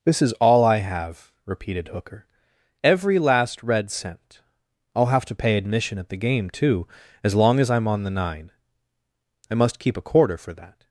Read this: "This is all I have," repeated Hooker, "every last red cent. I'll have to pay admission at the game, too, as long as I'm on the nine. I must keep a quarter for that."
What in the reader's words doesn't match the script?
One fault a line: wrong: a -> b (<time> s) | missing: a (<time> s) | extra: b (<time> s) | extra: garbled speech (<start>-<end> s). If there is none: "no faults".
no faults